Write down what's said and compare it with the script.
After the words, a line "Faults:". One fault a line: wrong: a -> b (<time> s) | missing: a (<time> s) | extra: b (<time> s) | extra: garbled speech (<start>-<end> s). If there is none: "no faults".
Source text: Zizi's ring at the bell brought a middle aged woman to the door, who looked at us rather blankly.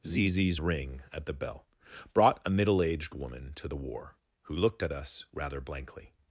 Zizi's ring at the bell brought a middle aged woman to the war, who looked at us rather blankly.
Faults:
wrong: door -> war (3.8 s)